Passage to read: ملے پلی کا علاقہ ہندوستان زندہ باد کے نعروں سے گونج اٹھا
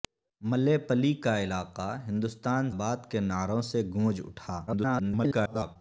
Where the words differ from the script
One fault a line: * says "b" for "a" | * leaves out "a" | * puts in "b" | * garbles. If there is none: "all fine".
* leaves out "زندہ"
* garbles